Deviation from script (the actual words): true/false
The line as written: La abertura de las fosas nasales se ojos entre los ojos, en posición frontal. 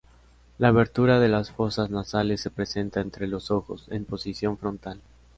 true